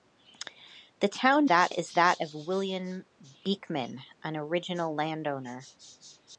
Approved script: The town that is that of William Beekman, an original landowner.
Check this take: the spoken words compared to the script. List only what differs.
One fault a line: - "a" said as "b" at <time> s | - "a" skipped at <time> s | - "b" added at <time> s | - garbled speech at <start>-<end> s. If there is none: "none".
none